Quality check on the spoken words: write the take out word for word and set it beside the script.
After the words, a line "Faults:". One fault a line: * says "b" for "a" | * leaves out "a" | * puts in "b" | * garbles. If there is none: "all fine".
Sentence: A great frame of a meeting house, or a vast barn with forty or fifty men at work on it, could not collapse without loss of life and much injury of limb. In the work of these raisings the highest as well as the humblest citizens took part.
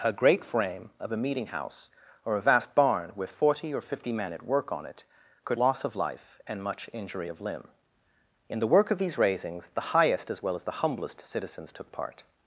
A great frame of a meeting house, or a vast barn with forty or fifty men at work on it, could loss of life and much injury of limb. In the work of these raisings the highest as well as the humblest citizens took part.
Faults:
* leaves out "not collapse without"